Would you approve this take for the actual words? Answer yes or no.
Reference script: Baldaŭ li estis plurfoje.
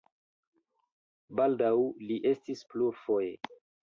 yes